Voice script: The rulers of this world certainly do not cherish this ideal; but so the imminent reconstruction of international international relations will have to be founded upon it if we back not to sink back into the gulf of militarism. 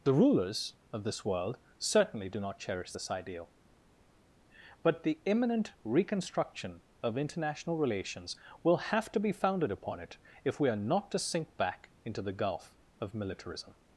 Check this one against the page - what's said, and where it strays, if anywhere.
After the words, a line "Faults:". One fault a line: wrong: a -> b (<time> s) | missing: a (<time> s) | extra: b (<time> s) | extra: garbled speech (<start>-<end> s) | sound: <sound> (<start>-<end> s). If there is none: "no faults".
The rulers of this world certainly do not cherish this ideal; but the imminent reconstruction of international relations will have to be founded upon it if we are not to sink back into the gulf of militarism.
Faults:
missing: so (5.0 s)
missing: international (7.8 s)
wrong: back -> are (10.7 s)